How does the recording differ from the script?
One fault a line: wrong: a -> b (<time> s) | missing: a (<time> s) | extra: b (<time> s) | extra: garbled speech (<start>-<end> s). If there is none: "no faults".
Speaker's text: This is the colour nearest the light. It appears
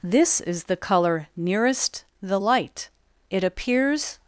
no faults